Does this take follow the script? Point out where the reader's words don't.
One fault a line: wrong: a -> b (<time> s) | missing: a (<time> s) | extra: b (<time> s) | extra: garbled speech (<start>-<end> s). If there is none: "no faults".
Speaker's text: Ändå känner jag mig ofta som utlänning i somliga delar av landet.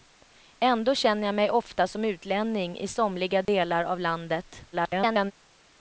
extra: garbled speech (4.7-5.3 s)